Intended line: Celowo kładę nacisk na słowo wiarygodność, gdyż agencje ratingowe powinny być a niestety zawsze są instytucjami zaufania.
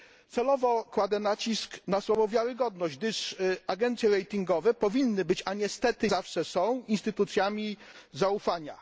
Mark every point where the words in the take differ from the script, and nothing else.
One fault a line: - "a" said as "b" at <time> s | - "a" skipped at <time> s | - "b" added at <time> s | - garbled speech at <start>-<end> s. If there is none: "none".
none